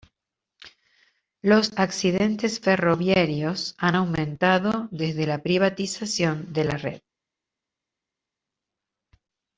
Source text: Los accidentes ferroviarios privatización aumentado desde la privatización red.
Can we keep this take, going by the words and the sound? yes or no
no